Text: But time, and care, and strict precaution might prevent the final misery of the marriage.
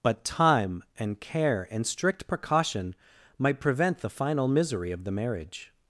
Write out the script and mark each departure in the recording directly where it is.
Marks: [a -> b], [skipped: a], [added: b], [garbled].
But time, and care, and strict precaution might prevent the final misery of the marriage.